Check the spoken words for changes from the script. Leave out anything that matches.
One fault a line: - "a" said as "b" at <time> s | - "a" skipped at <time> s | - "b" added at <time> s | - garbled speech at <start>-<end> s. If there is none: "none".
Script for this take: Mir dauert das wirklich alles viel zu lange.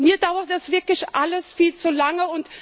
none